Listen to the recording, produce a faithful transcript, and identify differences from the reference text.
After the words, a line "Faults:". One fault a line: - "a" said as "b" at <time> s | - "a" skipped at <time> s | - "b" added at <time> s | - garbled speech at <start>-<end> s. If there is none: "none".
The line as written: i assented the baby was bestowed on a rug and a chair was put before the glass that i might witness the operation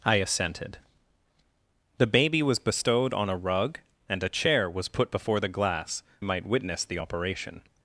i assented the baby was bestowed on a rug and a chair was put before the glass might witness the operation
Faults:
- "that i" skipped at 6.0 s